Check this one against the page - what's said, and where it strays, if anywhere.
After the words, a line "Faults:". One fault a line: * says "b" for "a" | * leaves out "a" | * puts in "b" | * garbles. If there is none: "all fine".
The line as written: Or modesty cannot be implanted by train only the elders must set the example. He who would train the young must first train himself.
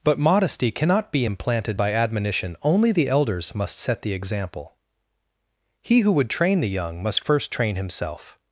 But modesty cannot be implanted by admonition only the elders must set the example. He who would train the young must first train himself.
Faults:
* says "But" for "Or"
* says "admonition" for "train"